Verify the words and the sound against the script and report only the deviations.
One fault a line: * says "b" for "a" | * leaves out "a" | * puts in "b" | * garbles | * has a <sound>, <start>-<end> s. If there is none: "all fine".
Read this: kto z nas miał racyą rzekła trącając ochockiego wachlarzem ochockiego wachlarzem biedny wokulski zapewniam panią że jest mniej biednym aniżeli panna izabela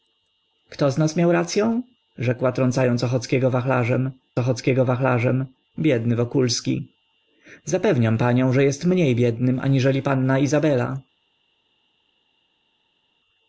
all fine